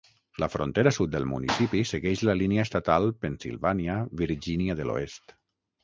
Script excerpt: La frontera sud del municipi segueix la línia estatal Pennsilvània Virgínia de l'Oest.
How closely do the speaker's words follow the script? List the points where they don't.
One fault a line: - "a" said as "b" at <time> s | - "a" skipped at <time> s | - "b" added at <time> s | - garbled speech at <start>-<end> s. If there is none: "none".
none